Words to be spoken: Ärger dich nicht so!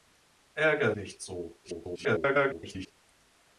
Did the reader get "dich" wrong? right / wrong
wrong